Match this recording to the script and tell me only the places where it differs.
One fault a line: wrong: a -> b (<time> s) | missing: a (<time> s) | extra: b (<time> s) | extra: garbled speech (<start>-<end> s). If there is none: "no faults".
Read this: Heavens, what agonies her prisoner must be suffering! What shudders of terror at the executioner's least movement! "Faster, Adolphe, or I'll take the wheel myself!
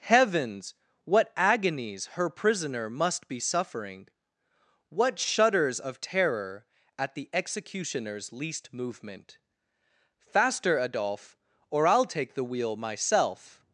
no faults